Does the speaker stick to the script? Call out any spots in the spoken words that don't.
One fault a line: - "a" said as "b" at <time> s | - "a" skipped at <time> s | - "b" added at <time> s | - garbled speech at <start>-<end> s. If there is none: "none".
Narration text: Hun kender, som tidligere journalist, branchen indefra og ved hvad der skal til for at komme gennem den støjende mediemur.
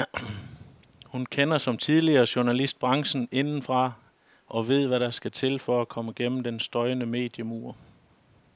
none